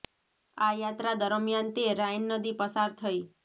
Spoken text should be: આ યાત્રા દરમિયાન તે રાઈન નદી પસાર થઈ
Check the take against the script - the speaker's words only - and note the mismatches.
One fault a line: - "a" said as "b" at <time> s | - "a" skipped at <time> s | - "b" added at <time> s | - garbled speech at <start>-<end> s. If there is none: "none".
none